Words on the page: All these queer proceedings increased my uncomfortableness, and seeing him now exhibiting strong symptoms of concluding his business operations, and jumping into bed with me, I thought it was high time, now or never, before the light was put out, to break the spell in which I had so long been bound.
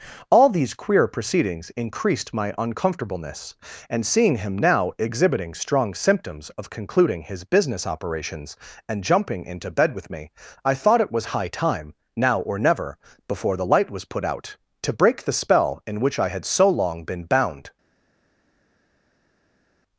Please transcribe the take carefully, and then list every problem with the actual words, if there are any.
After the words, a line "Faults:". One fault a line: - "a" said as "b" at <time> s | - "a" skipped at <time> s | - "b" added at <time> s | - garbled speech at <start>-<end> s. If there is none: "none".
All these queer proceedings increased my uncomfortableness, and seeing him now exhibiting strong symptoms of concluding his business operations, and jumping into bed with me, I thought it was high time, now or never, before the light was put out, to break the spell in which I had so long been bound.
Faults:
none